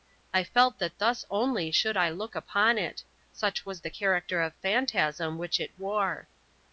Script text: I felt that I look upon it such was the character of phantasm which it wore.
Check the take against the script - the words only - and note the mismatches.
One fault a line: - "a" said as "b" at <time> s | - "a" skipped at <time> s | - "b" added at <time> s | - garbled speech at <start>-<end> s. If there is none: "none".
- "thus only should" added at 1.0 s